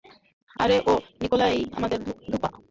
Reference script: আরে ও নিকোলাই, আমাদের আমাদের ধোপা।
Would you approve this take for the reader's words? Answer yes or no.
no